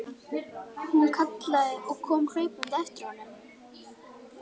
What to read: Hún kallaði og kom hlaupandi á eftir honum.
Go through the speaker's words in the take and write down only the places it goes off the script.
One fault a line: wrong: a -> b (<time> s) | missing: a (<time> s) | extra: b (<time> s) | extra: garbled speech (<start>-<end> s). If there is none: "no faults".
no faults